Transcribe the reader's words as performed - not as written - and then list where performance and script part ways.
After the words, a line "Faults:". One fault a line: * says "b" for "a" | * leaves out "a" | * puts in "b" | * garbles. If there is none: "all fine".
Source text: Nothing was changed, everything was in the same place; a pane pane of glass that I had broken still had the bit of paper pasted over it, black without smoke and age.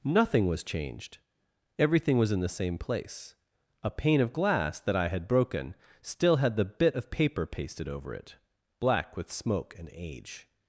Nothing was changed, everything was in the same place; a pane of glass that I had broken still had the bit of paper pasted over it, black with smoke and age.
Faults:
* leaves out "pane"
* says "with" for "without"